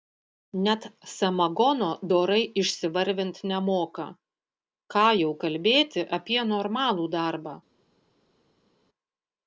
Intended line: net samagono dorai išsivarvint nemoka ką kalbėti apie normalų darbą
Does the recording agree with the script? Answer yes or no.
no